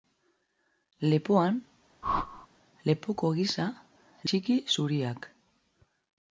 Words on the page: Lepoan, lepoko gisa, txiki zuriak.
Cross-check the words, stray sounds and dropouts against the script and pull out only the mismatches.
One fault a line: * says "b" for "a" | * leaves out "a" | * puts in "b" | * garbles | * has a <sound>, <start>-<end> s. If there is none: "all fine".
* has a whoosh, 2.0-2.5 s